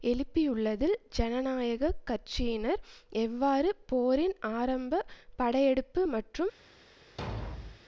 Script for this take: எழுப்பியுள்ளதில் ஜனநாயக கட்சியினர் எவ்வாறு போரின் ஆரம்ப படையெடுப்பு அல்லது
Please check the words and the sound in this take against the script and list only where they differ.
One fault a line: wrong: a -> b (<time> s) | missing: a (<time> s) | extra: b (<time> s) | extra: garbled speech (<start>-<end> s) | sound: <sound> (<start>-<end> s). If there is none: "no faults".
wrong: அல்லது -> மற்றும் (6.1 s)
sound: thud (7.2-7.8 s)